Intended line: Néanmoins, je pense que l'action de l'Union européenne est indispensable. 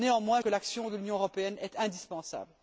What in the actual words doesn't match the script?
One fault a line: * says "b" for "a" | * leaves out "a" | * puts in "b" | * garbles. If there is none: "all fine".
* leaves out "je pense"